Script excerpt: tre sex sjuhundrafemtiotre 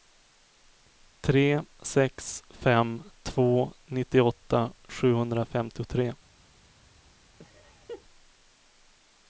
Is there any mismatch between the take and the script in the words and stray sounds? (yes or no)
yes